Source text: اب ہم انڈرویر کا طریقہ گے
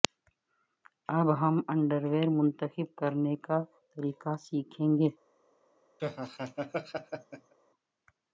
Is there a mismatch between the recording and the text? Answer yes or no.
yes